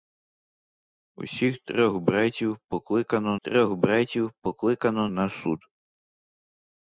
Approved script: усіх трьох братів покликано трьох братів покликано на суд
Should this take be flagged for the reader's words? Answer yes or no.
no